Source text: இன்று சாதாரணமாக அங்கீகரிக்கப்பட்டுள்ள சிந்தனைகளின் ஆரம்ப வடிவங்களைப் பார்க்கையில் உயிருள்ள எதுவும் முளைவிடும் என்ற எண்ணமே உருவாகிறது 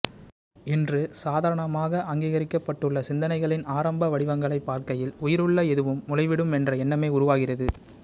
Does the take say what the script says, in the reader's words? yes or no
yes